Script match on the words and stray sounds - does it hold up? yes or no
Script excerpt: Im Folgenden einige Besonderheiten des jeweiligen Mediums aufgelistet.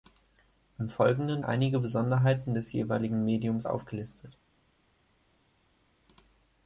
yes